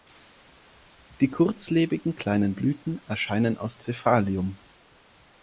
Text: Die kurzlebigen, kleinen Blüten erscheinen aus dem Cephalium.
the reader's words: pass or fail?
fail